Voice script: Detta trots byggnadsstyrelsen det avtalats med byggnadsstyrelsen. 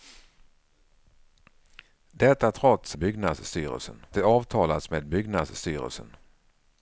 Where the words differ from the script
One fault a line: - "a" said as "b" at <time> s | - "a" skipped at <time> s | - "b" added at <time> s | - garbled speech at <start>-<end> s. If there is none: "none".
none